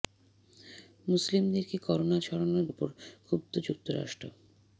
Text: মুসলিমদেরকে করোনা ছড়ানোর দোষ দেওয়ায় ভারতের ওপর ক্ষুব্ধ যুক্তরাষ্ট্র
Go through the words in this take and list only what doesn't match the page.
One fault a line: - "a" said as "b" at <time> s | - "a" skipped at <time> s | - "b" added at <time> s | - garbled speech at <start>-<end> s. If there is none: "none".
- "দোষ দেওয়ায় ভারতের" skipped at 2.6 s